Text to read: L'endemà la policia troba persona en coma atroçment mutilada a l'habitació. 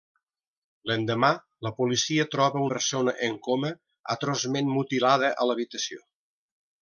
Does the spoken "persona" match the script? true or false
true